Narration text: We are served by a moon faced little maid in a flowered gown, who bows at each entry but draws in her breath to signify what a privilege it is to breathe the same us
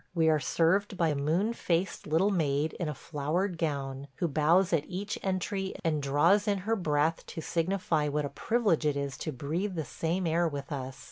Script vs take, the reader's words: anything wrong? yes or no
yes